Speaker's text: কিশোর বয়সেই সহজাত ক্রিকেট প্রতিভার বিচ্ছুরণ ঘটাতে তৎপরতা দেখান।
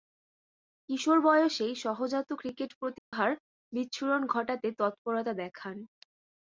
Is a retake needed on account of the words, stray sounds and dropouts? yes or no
yes